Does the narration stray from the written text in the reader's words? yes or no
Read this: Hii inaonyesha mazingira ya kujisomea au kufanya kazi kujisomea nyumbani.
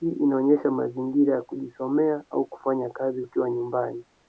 yes